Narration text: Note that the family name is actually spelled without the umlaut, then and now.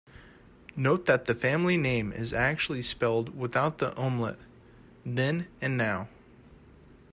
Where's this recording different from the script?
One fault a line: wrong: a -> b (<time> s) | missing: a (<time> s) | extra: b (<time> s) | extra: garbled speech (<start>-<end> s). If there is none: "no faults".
no faults